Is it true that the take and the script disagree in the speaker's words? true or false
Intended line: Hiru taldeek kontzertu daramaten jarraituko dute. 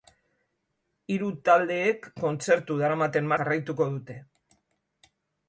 false